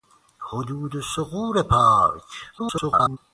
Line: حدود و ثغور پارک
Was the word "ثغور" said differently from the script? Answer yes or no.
no